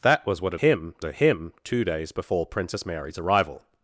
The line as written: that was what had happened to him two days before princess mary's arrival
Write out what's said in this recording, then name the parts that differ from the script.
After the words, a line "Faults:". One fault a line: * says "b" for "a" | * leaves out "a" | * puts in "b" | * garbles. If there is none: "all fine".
that was what had him to him two days before princess mary's arrival
Faults:
* says "him" for "happened"